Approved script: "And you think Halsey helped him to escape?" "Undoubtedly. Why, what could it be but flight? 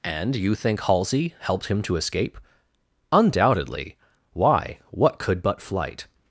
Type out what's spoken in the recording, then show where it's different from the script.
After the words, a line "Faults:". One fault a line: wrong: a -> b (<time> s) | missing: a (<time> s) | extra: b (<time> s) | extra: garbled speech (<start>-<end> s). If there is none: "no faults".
"And you think Halsey helped him to escape?" "Undoubtedly. Why, what could but flight?
Faults:
missing: it be (5.4 s)